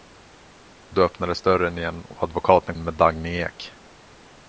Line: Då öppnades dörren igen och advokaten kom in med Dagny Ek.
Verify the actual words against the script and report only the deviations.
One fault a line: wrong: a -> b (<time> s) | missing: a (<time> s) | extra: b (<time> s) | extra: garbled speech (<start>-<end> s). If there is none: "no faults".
missing: kom (2.8 s)